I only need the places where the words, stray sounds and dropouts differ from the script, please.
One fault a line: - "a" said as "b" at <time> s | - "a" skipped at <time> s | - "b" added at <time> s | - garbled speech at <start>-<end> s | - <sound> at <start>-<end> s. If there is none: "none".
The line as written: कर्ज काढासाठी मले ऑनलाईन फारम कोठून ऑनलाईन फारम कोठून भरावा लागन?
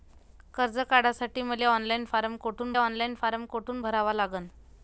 none